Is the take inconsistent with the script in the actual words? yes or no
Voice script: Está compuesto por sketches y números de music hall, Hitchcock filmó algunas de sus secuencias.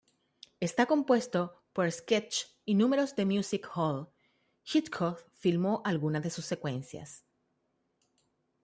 no